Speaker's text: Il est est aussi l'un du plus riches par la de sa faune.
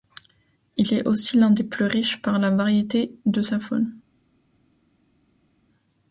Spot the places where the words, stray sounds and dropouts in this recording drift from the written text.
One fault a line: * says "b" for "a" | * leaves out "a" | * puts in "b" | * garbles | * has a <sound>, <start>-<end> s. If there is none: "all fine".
* leaves out "est"
* says "des" for "du"
* puts in "variété"